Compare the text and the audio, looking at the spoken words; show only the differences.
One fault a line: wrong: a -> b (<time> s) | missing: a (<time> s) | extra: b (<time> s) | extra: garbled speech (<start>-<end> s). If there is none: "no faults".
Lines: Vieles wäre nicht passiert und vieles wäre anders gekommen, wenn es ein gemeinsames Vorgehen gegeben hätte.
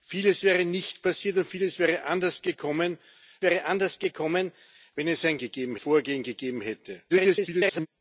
extra: wäre anders gekommen (3.4 s)
wrong: gemeinsames -> gegeben (5.4 s)
extra: garbled speech (7.1-7.9 s)